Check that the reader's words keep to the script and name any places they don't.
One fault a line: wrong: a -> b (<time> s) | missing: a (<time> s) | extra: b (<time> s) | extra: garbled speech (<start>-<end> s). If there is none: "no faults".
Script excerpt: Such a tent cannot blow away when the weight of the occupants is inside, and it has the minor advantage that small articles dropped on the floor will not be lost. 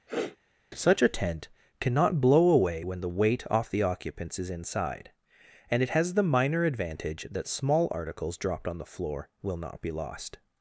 wrong: of -> off (3.5 s)